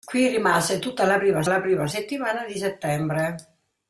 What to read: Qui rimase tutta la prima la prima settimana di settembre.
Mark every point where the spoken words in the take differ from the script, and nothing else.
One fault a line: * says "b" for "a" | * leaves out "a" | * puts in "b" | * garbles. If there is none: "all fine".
all fine